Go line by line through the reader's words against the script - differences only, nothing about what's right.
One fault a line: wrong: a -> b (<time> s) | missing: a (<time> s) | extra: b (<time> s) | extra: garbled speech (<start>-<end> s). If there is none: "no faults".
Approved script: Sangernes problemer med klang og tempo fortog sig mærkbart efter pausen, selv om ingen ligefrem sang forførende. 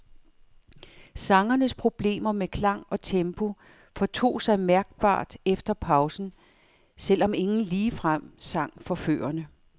no faults